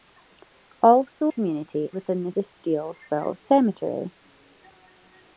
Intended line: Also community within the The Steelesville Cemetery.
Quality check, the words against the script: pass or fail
pass